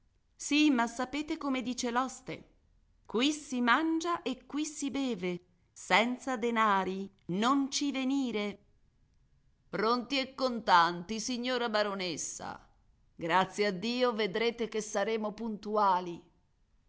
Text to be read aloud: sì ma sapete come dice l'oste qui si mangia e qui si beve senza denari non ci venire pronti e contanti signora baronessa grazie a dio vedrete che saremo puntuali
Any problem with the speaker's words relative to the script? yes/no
no